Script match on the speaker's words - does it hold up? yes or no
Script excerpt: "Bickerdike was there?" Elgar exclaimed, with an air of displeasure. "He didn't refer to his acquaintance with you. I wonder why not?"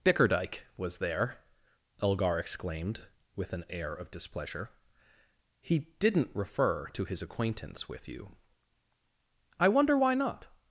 yes